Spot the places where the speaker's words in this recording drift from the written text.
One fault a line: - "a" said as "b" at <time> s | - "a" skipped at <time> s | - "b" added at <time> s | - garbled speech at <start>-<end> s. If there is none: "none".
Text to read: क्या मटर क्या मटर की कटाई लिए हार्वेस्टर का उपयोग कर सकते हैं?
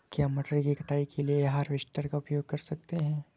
- "क्या मटर" skipped at 0.6 s
- "के" added at 1.0 s